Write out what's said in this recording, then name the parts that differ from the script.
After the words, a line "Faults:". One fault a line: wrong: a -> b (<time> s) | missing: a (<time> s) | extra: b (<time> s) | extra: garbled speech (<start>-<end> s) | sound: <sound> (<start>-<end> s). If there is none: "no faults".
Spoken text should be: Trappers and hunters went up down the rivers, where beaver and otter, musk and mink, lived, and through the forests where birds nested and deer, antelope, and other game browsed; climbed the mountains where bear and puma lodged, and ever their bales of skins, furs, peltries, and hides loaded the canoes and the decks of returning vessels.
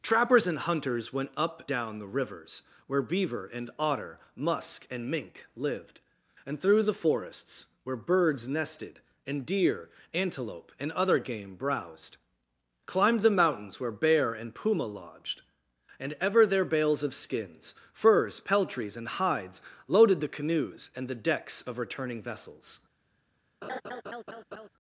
Trappers and hunters went up down the rivers, where beaver and otter, musk and mink, lived, and through the forests where birds nested and deer, antelope, and other game browsed; climbed the mountains where bear and puma lodged, and ever their bales of skins, furs, peltries, and hides loaded the canoes and the decks of returning vessels.
Faults:
sound: laugh (23.6-24.7 s)